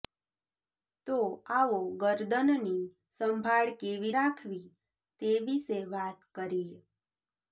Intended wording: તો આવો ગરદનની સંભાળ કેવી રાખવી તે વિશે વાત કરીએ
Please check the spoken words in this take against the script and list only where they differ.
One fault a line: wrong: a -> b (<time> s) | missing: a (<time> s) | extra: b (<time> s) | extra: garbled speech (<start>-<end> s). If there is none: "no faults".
no faults